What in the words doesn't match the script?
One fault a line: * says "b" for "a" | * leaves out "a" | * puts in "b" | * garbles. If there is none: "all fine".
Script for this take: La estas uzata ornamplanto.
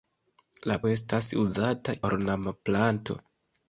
all fine